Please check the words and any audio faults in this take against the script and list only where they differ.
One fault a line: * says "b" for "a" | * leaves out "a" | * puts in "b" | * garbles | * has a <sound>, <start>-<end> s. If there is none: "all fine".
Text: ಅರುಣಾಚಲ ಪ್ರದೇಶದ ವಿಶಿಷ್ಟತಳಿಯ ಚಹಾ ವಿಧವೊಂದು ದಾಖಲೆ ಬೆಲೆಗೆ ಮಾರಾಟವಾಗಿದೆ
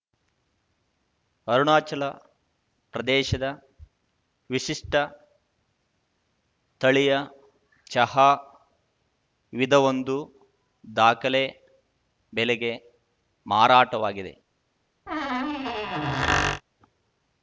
* has a squeak, 15.1-16.6 s